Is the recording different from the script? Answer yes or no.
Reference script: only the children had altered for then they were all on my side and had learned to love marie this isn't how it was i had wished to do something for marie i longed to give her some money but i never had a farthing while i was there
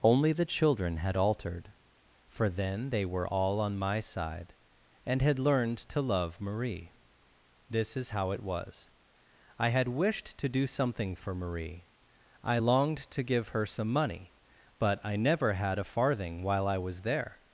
yes